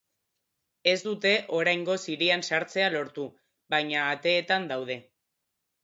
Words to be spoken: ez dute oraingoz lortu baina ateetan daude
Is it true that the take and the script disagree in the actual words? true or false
true